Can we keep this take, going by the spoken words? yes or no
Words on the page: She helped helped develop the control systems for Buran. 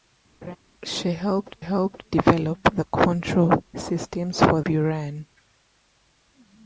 yes